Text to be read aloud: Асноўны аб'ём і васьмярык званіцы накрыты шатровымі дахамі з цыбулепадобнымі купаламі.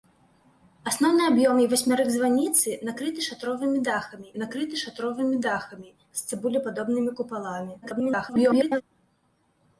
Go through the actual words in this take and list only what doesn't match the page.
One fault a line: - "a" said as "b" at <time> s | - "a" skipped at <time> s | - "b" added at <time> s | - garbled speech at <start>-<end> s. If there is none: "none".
- "накрыты шатровымі дахамі" added at 4.4 s
- garbled speech at 7.8-8.8 s